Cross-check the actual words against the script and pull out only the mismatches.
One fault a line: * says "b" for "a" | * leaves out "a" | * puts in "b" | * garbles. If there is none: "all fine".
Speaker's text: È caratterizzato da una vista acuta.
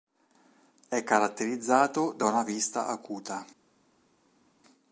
all fine